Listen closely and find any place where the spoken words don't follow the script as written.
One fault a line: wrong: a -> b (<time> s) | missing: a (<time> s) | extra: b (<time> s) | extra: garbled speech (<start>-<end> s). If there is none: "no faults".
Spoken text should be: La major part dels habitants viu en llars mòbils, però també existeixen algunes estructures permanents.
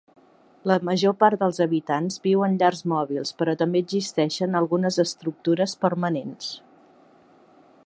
no faults